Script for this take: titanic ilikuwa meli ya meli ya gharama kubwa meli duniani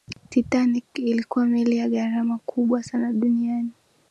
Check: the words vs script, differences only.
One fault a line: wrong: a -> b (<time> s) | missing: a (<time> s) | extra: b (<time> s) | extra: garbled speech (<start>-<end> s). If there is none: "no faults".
missing: meli ya (1.9 s)
wrong: meli -> sana (2.8 s)